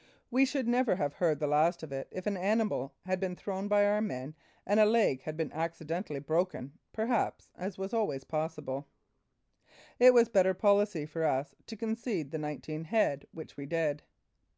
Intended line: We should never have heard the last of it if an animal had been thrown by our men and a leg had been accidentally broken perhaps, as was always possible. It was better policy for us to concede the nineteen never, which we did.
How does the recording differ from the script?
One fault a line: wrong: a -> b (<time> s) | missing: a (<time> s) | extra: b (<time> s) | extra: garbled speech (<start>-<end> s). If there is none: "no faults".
wrong: never -> head (12.9 s)